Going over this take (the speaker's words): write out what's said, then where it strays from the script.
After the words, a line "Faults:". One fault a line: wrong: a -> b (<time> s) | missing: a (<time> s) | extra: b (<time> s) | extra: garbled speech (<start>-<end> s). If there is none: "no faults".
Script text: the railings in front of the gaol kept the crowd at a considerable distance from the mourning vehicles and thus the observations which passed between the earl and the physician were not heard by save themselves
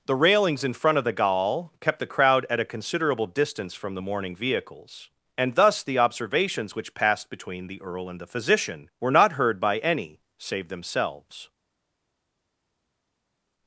the railings in front of the gaol kept the crowd at a considerable distance from the mourning vehicles and thus the observations which passed between the earl and the physician were not heard by any save themselves
Faults:
extra: any (9.8 s)